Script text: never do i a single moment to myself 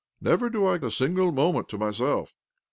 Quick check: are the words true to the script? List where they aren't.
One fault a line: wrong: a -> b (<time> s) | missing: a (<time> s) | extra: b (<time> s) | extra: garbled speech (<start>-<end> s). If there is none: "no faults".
no faults